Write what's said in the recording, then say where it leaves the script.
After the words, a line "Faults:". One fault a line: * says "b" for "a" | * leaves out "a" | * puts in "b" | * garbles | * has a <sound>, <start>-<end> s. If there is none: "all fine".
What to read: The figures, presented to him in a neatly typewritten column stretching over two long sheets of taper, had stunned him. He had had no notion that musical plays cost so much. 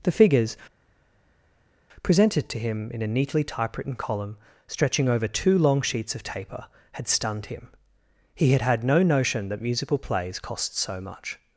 The figures, presented to him in a neatly typewritten column stretching over two long sheets of taper, had stunned him. He had had no notion that musical plays cost so much.
Faults:
all fine